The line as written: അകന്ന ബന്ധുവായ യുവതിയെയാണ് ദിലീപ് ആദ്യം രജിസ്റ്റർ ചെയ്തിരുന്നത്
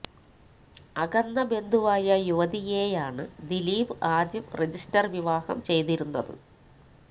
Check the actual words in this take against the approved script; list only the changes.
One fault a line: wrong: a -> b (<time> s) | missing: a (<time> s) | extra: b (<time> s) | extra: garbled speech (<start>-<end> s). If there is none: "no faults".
extra: വിവാഹം (5.2 s)